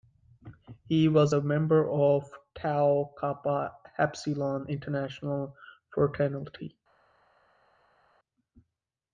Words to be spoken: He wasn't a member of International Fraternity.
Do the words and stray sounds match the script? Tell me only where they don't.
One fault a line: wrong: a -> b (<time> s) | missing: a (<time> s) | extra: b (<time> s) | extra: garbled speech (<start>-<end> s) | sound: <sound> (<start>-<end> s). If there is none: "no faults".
wrong: wasn't -> was (1.1 s)
extra: Tau Kappa Epsilon (2.5 s)